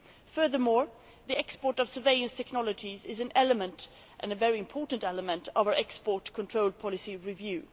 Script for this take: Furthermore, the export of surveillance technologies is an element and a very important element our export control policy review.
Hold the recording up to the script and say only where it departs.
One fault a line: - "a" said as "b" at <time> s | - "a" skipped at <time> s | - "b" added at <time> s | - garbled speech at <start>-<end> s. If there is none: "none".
- "of" added at 5.5 s